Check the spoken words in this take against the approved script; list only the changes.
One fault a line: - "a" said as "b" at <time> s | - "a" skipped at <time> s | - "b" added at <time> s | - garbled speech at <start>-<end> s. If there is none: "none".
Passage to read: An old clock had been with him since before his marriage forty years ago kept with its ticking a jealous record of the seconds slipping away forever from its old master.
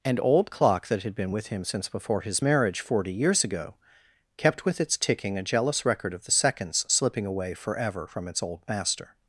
- "that" added at 0.9 s